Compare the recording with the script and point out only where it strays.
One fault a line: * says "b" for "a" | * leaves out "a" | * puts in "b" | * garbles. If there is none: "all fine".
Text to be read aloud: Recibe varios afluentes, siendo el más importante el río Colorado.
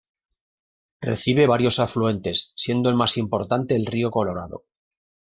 all fine